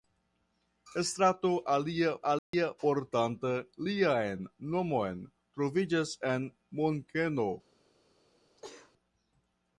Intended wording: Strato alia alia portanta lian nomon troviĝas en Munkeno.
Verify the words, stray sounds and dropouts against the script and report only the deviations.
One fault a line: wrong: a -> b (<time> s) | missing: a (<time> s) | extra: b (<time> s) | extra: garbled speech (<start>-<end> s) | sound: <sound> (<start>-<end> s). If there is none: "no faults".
sound: dropout (2.4-2.5 s)
sound: sneeze (8.6-8.9 s)